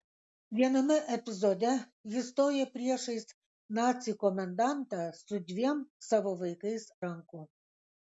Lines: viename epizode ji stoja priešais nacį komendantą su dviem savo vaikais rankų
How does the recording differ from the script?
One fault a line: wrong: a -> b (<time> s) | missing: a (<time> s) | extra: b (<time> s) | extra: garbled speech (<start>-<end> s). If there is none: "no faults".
no faults